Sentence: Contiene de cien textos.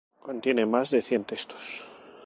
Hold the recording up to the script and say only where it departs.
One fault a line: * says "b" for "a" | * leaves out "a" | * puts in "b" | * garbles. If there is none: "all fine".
* puts in "más"